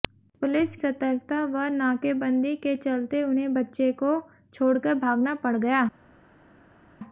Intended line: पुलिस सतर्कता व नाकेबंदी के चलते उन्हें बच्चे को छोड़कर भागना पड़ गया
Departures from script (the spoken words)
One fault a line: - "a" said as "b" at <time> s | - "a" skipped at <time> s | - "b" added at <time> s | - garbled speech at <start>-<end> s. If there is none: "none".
none